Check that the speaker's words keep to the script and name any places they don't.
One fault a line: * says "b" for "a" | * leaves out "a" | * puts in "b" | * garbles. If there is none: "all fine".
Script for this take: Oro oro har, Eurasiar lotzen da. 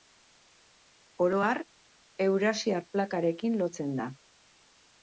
* leaves out "oro"
* puts in "plakarekin"